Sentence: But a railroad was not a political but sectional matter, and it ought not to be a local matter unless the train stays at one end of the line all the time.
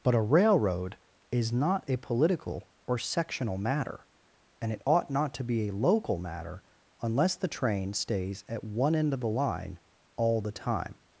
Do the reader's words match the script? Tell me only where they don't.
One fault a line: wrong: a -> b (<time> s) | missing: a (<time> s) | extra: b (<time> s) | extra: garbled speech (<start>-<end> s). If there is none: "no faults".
wrong: was -> is (1.3 s)
wrong: but -> or (2.9 s)